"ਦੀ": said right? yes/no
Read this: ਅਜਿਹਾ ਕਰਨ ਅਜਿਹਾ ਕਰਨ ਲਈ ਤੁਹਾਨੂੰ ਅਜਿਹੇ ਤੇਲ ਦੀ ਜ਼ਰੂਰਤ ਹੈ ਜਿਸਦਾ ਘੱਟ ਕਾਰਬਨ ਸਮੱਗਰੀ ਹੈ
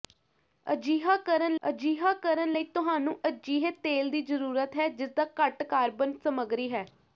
yes